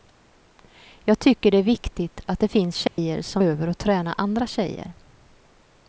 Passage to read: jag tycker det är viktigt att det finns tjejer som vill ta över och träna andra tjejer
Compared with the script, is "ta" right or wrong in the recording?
wrong